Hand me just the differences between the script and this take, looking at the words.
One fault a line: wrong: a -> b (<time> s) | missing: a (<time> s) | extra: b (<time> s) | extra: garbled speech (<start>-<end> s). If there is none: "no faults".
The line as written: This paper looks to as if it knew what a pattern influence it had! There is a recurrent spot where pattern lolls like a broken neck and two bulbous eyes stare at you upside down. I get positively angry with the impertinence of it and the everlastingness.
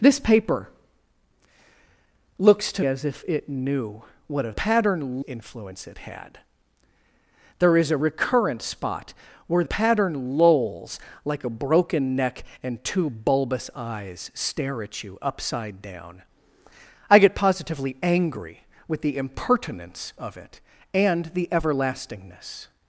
no faults